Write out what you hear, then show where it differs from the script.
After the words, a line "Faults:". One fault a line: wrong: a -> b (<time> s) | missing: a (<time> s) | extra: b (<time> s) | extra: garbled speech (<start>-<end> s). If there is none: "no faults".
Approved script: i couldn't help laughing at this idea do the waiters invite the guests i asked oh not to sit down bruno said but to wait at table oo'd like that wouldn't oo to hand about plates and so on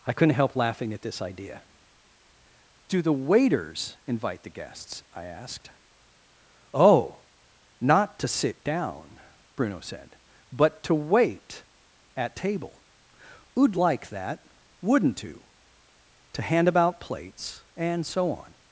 i couldn't help laughing at this idea do the waiters invite the guests i asked oh not to sit down bruno said but to wait at table oo'd like that wouldn't oo to hand about plates and so on
Faults:
no faults